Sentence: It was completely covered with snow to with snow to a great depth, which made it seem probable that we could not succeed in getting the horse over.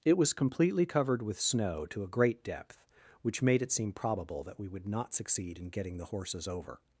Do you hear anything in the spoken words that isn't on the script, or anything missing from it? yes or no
yes